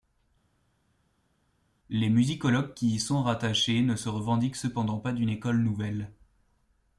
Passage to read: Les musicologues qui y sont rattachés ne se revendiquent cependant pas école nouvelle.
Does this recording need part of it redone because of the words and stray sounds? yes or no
yes